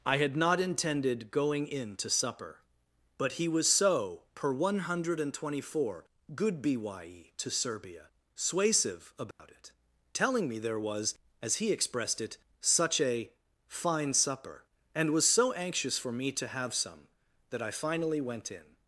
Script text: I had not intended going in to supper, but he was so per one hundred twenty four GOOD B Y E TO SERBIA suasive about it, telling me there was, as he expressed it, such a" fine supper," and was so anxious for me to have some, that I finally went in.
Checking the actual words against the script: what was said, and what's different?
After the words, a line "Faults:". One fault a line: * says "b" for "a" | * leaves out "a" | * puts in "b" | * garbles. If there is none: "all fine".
I had not intended going in to supper, but he was so per one hundred twenty four GOOD B Y E TO SERBIA suasive about it, telling me there was, as he expressed it, such a" fine supper," and was so anxious for me to have some, that I finally went in.
Faults:
all fine